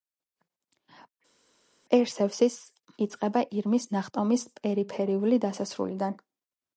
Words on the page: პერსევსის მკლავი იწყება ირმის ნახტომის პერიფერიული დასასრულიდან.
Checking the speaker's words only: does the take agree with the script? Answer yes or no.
no